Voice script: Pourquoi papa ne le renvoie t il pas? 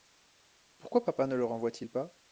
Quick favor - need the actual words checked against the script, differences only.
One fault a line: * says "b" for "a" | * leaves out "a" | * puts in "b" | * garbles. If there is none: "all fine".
all fine